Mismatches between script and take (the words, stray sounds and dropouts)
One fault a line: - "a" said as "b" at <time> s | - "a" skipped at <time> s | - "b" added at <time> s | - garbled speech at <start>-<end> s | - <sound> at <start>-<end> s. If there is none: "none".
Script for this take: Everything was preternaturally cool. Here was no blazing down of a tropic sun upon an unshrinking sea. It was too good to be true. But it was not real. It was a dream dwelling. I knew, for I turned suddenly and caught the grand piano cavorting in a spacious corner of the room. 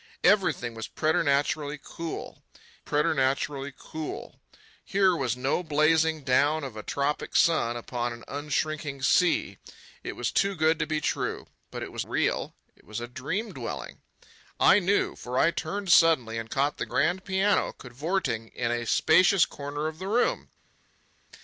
- "preternaturally cool" added at 2.8 s
- "not" skipped at 12.0 s